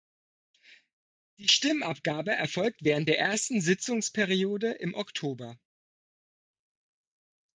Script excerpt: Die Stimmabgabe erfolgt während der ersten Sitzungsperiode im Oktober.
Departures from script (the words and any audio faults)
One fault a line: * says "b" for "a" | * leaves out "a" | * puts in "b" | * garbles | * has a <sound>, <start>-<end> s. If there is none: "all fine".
all fine